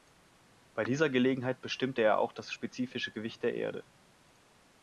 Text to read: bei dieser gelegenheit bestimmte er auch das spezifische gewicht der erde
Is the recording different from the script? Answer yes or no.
no